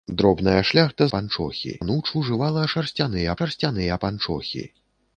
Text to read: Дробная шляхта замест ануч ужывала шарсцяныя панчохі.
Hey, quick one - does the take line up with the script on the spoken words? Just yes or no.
no